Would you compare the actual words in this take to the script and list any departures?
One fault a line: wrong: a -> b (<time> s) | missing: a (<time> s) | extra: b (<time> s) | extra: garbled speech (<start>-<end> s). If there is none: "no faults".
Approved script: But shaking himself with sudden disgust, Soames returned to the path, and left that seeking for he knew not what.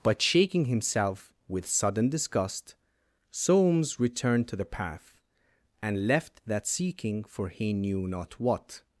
no faults